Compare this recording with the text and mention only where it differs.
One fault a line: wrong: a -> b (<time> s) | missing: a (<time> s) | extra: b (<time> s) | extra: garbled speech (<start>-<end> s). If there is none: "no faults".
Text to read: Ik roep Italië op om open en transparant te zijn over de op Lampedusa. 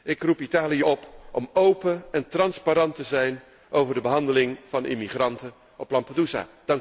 extra: behandeling van immigranten (4.0 s)